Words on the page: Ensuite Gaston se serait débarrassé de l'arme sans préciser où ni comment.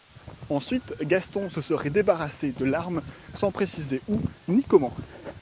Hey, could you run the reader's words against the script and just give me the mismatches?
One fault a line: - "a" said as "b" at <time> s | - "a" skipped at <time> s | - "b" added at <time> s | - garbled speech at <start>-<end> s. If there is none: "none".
none